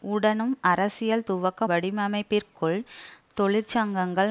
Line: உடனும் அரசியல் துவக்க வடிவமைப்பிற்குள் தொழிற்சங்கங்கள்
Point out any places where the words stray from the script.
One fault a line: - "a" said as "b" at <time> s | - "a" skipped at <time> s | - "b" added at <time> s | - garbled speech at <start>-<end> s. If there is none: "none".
none